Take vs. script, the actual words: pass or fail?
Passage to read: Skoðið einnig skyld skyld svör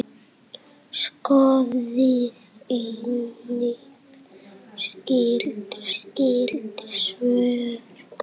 pass